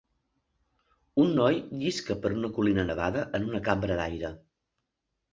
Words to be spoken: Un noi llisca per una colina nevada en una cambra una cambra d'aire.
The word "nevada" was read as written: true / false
true